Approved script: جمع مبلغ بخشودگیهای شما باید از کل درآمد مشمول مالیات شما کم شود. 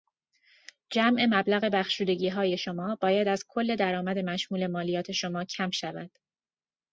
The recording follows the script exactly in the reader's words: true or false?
true